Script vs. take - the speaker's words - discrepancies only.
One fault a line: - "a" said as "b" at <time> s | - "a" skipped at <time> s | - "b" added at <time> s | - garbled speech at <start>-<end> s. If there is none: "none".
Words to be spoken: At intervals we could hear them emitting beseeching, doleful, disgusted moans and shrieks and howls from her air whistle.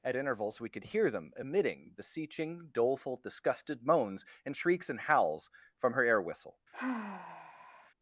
none